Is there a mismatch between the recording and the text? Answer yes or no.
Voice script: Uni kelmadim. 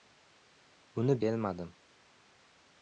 no